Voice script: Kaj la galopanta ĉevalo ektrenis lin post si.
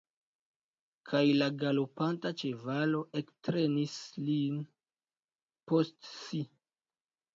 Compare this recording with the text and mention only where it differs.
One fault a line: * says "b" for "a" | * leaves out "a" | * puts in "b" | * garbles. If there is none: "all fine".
all fine